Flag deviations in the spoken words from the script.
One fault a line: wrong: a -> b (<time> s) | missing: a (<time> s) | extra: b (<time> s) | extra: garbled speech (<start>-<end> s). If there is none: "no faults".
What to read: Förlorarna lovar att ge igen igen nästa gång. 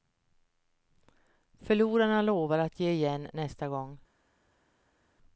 missing: igen (3.3 s)